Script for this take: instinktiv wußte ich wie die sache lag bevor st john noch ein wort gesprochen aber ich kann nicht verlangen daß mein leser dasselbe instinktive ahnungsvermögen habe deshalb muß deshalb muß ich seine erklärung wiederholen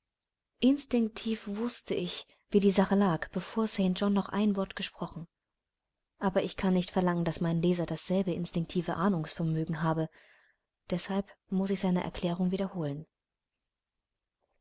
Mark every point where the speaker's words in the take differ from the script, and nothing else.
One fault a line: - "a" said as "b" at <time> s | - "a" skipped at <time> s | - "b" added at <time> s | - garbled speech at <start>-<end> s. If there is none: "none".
- "deshalb muß" skipped at 11.7 s